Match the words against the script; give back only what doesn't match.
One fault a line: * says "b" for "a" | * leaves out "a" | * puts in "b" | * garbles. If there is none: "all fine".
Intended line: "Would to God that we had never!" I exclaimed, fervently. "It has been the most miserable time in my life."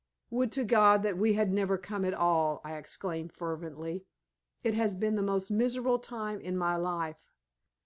* puts in "come at all"